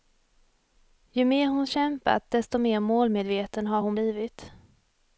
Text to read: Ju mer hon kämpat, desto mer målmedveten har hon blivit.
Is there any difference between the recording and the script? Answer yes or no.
no